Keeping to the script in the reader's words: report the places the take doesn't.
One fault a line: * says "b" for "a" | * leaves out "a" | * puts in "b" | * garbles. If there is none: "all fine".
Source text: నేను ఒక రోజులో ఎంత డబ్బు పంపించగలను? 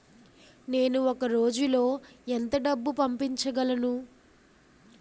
all fine